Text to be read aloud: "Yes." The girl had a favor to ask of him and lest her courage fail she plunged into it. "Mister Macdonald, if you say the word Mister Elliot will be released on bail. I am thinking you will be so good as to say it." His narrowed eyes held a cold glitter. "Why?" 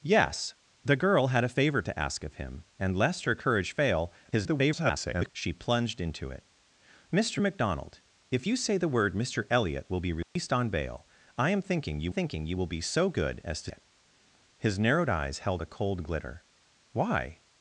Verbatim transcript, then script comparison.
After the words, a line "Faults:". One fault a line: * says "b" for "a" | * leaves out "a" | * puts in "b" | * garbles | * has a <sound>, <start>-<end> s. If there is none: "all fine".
"Yes." The girl had a favor to ask of him and lest her courage fail [garbled] she plunged into it. "Mister Macdonald, if you say the word Mister Elliot will be released on bail. I am thinking you thinking you will be so good as to it." His narrowed eyes held a cold glitter. "Why?"
Faults:
* garbles
* has a dropout, 10.2-10.4 s
* puts in "thinking you"
* leaves out "say"